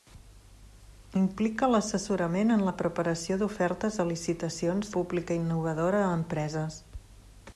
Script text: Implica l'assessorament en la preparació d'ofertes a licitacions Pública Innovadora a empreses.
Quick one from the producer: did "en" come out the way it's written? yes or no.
yes